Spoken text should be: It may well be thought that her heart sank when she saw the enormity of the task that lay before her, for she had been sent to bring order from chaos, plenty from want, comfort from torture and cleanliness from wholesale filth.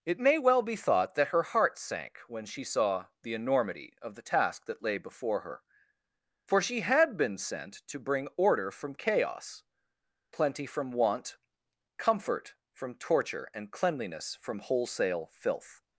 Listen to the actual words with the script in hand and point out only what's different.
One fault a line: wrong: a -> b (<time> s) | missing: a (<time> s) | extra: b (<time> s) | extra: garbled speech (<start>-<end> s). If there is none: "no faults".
no faults